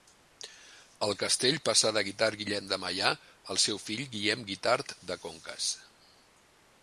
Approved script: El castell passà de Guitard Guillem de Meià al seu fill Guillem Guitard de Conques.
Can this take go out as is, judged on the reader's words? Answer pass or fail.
pass